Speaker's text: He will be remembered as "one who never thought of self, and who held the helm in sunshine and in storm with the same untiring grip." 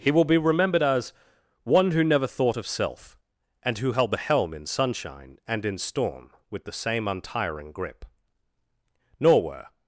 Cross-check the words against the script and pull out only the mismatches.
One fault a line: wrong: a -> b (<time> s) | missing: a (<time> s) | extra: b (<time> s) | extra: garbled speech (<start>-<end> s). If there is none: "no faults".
extra: Nor were (9.2 s)